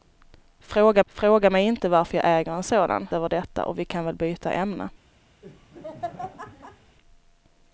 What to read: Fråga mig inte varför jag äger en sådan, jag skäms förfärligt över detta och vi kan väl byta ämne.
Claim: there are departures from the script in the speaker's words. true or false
true